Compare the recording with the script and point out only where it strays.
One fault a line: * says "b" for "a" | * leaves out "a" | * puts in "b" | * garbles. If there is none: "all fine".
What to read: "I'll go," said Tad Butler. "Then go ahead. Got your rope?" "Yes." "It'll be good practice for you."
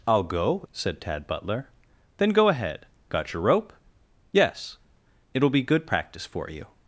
all fine